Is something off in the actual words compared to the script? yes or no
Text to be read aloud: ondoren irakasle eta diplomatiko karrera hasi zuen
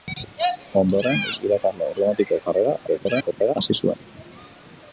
yes